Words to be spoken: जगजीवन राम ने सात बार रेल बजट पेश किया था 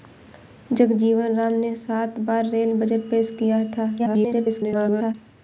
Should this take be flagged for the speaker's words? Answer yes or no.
yes